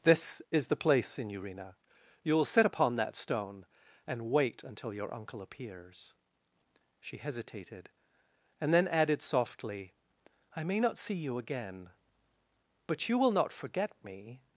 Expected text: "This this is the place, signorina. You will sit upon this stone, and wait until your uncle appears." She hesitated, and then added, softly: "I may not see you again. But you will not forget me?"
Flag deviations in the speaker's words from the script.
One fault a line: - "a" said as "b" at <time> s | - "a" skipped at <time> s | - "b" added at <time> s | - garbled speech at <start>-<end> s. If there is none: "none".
- "this" skipped at 0.4 s
- "this" said as "that" at 3.0 s